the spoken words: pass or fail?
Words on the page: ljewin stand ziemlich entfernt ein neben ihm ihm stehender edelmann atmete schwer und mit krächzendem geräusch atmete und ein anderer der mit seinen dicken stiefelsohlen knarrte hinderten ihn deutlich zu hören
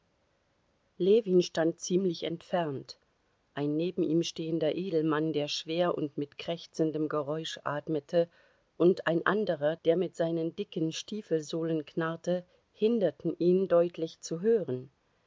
fail